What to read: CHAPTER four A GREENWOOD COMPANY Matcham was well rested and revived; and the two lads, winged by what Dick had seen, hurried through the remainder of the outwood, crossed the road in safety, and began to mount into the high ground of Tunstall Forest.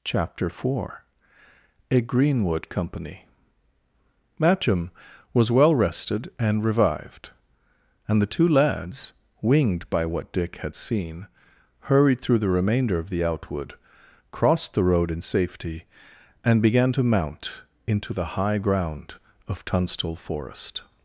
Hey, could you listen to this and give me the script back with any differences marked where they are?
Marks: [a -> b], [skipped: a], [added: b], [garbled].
CHAPTER four A GREENWOOD COMPANY Matcham was well rested and revived; and the two lads, winged by what Dick had seen, hurried through the remainder of the outwood, crossed the road in safety, and began to mount into the high ground of Tunstall Forest.